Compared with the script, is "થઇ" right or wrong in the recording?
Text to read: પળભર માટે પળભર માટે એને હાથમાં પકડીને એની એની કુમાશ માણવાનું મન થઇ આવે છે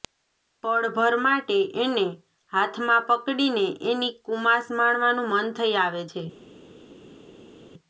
right